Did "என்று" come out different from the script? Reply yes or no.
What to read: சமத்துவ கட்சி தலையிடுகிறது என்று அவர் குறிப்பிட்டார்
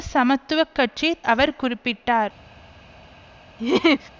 yes